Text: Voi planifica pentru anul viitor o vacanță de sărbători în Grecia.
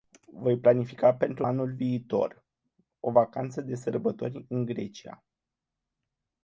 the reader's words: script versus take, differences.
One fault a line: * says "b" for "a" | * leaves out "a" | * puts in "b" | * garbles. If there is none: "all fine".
all fine